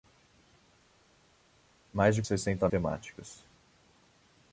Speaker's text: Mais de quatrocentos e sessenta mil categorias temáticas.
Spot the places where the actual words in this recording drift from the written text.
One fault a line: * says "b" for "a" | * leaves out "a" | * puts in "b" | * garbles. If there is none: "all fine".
* leaves out "quatrocentos"
* leaves out "mil categorias"